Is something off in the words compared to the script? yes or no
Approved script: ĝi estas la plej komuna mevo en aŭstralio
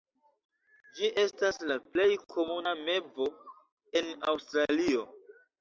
no